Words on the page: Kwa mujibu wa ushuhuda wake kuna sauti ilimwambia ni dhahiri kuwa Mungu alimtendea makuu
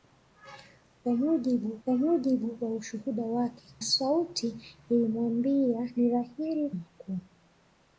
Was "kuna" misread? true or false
true